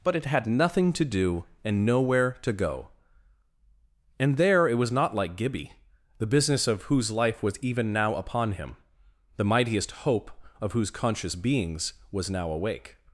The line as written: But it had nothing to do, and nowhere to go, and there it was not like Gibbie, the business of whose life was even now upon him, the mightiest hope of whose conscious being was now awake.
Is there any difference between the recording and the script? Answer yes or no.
yes